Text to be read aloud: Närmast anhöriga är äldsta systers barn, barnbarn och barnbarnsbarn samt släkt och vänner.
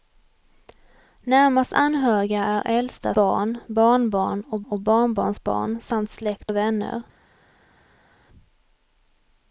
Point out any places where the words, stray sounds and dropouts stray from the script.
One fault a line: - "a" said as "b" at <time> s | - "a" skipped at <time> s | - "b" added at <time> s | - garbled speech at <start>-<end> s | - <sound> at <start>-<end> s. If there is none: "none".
- "systers" skipped at 3.1 s
- "och" added at 4.6 s